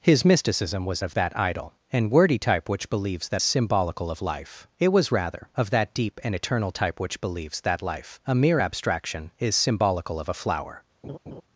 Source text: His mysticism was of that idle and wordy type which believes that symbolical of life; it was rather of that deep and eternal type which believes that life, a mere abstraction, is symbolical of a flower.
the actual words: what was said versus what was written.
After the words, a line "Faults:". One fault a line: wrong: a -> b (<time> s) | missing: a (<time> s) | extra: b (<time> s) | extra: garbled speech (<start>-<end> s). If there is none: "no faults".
His mysticism was of that idle and wordy type which believes that symbolical of life; it was rather of that deep and eternal type which believes that life, a mere abstraction, is symbolical of a flower.
Faults:
no faults